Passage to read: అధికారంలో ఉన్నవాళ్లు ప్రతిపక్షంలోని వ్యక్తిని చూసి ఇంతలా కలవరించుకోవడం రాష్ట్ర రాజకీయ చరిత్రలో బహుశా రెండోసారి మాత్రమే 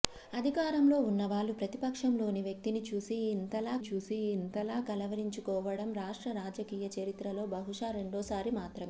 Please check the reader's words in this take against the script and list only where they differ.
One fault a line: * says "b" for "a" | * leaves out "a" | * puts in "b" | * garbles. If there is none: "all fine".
* puts in "చూసి ఇంతలా"